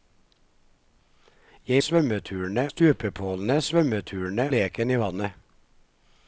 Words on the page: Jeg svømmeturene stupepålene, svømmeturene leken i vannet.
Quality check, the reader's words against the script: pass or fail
pass